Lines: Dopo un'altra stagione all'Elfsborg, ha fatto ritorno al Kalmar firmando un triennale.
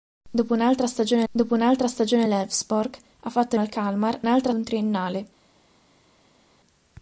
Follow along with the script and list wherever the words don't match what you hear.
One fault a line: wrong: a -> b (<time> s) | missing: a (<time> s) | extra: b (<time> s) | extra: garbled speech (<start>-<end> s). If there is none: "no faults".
extra: dopo un'altra stagione (1.3 s)
missing: ritorno (3.5 s)
wrong: firmando -> un'altra (4.2 s)